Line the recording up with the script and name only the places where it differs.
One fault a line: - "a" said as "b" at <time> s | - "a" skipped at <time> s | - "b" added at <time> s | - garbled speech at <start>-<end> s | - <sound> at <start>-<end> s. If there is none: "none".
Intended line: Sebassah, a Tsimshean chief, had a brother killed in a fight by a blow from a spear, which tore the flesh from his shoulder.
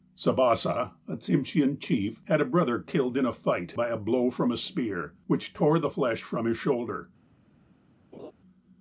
- laugh at 8.1-8.3 s